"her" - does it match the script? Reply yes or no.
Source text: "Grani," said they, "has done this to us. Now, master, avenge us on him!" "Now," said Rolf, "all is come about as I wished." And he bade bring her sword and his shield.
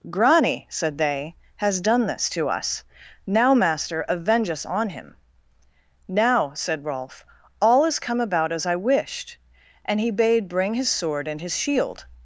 no